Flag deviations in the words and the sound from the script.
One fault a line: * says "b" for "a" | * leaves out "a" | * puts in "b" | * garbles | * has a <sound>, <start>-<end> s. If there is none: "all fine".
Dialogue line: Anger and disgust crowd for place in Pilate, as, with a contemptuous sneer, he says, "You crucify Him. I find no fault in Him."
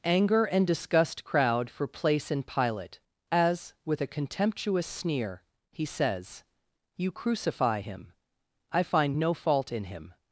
all fine